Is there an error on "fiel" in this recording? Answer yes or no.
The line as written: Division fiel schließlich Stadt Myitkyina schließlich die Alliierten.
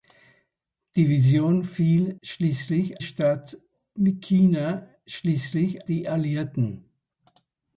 no